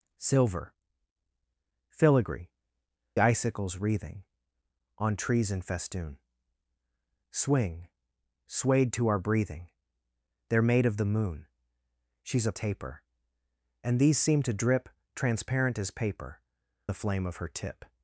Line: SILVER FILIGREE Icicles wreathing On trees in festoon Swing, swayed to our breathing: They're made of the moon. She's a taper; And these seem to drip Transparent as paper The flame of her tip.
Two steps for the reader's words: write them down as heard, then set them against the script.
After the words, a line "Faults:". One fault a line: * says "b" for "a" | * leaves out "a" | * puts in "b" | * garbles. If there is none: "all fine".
SILVER FILIGREE Icicles wreathing On trees in festoon Swing, swayed to our breathing: They're made of the moon. She's a taper; And these seem to drip Transparent as paper The flame of her tip.
Faults:
all fine